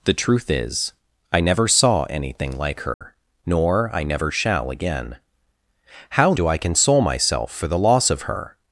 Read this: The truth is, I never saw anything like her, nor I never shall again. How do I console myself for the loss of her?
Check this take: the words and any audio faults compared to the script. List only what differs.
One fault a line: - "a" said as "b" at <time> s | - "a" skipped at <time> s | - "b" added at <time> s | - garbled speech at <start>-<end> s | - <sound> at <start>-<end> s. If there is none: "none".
- dropout at 2.9-3.0 s